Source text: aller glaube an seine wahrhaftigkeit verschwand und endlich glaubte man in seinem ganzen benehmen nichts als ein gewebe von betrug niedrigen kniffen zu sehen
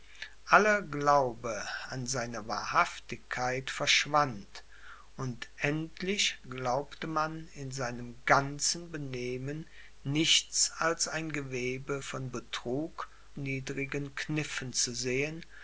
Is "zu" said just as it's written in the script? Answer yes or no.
yes